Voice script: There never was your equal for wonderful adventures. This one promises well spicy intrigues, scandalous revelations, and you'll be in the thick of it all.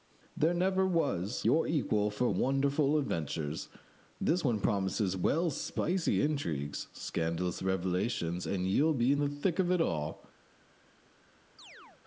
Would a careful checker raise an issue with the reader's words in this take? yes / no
no